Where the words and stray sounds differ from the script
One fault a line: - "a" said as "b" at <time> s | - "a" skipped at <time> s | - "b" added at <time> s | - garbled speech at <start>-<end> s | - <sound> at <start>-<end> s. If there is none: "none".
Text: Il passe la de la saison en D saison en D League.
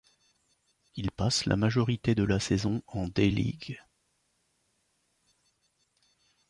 - "majorité" added at 1.6 s
- "saison en D" skipped at 3.3 s